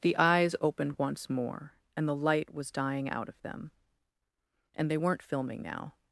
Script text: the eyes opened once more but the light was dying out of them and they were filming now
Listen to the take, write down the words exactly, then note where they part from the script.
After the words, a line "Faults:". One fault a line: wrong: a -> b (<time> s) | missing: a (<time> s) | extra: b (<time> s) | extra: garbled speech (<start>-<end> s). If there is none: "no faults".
the eyes opened once more and the light was dying out of them and they weren't filming now
Faults:
wrong: but -> and (1.9 s)
wrong: were -> weren't (4.9 s)